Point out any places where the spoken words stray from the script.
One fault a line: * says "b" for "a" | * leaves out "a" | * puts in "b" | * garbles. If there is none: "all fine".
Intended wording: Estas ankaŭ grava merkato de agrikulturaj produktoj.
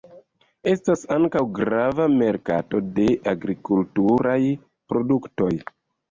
all fine